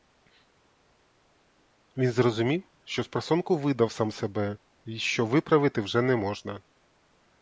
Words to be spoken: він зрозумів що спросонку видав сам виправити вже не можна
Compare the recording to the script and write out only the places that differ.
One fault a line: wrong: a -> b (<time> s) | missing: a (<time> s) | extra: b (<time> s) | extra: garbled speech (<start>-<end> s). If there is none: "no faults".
extra: себе й що (4.1 s)